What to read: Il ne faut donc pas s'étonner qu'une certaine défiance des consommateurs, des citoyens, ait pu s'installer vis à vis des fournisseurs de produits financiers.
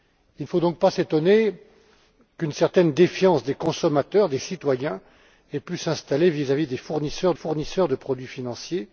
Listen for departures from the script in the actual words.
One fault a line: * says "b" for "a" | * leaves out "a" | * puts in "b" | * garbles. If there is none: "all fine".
* puts in "fournisseurs"